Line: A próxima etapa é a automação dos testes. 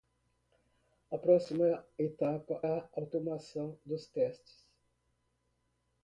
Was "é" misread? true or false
true